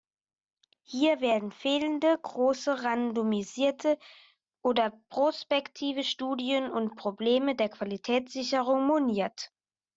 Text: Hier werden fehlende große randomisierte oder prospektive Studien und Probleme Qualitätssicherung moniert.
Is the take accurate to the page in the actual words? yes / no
no